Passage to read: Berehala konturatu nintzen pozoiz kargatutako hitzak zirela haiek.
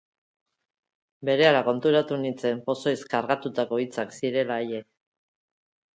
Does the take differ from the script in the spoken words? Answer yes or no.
no